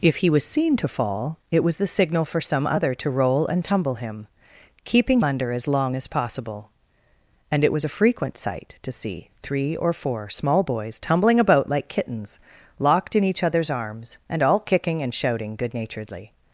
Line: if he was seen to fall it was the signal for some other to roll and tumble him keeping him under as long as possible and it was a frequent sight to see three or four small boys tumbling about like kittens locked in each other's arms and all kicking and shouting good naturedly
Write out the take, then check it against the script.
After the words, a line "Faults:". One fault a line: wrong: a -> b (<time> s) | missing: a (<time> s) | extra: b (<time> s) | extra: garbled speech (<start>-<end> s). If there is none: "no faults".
if he was seen to fall it was the signal for some other to roll and tumble him keeping under as long as possible and it was a frequent sight to see three or four small boys tumbling about like kittens locked in each other's arms and all kicking and shouting good naturedly
Faults:
missing: him (5.2 s)